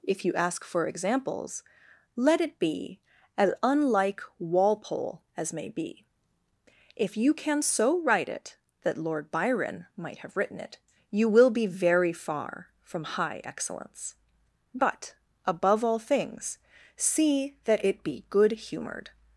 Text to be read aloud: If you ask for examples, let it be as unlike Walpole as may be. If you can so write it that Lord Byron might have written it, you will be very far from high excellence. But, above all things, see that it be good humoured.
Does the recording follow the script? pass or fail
pass